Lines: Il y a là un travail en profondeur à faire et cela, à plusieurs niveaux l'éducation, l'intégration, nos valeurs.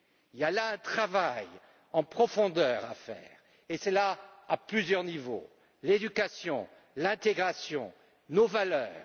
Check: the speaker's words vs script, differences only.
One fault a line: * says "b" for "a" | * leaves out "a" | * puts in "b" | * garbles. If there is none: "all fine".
all fine